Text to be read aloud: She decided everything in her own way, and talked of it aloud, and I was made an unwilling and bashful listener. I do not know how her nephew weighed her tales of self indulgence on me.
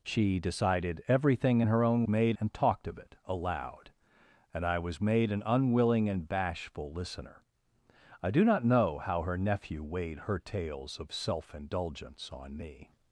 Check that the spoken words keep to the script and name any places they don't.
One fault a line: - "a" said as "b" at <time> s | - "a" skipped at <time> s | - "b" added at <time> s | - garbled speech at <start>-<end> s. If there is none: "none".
- "way" said as "made" at 2.1 s